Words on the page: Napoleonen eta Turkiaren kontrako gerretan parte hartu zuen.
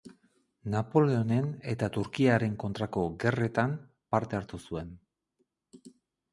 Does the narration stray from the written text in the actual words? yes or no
no